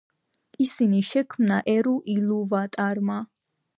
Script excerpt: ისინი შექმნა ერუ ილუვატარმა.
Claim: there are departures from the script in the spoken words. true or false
false